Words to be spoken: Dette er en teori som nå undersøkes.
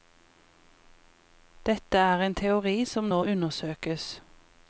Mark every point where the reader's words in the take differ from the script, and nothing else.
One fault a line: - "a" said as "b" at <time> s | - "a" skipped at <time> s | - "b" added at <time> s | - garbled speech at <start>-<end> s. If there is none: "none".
none